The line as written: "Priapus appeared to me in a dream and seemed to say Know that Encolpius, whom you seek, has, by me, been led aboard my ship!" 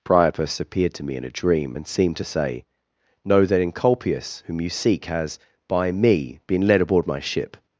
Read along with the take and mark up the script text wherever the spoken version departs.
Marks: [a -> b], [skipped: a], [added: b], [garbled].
"Priapus appeared to me in a dream and seemed to say Know that Encolpius, whom you seek, has, by me, been led aboard my ship!"